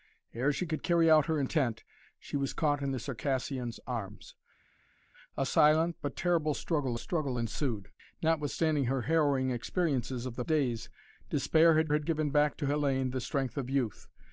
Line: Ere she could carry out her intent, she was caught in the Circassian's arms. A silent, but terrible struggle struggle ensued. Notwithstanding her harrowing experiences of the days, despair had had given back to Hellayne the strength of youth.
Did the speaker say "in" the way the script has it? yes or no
yes